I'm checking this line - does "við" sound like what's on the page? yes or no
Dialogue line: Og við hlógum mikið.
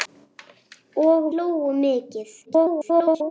no